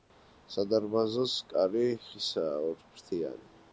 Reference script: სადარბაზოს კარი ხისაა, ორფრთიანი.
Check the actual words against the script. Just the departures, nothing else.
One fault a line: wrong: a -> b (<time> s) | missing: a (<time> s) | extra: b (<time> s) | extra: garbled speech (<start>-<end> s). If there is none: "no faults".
no faults